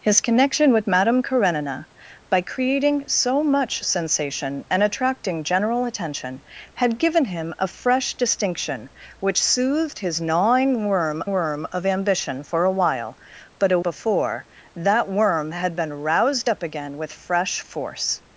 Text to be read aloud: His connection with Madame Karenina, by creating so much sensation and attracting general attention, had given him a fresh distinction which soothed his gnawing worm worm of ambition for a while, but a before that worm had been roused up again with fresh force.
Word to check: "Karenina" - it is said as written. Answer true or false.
true